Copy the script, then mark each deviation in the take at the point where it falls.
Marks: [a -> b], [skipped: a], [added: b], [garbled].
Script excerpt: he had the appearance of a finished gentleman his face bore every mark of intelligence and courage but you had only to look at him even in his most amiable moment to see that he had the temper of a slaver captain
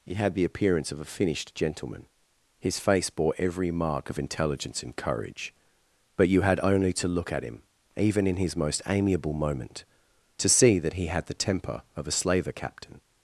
he had the appearance of a finished gentleman his face bore every mark of intelligence and courage but you had only to look at him even in his most amiable moment to see that he had the temper of a slaver captain